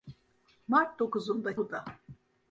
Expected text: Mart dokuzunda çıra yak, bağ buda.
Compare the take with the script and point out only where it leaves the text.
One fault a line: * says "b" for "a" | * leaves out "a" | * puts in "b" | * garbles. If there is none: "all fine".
* leaves out "çıra yak bağ"